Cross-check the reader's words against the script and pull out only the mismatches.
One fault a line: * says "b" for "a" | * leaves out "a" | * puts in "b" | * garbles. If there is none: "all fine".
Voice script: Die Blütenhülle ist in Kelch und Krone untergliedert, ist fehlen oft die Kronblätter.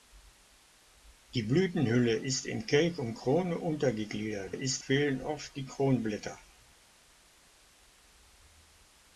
all fine